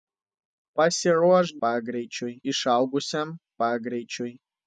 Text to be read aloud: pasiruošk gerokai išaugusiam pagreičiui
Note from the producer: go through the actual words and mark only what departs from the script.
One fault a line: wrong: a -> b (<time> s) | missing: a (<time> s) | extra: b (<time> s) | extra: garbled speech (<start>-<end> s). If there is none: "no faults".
wrong: gerokai -> pagreičiui (1.6 s)